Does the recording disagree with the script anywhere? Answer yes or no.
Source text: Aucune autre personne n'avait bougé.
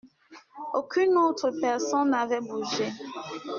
no